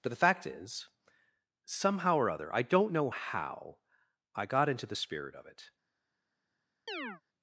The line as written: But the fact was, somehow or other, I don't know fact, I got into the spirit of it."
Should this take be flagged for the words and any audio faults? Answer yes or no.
yes